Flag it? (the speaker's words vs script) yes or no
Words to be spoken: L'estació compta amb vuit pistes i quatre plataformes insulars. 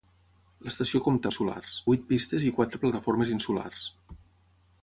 yes